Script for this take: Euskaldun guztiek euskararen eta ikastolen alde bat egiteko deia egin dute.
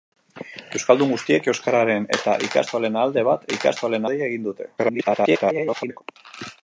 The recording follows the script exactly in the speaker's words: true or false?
false